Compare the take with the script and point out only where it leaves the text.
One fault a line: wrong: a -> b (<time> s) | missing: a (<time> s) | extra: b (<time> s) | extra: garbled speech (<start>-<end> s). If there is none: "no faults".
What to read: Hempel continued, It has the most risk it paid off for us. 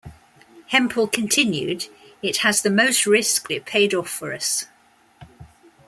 no faults